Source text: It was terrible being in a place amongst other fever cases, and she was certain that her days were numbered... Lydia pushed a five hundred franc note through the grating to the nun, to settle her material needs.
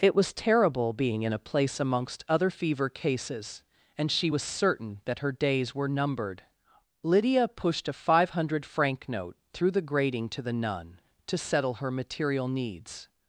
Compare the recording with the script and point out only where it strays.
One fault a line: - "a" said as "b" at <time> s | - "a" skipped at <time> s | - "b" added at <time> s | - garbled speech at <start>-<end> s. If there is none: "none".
none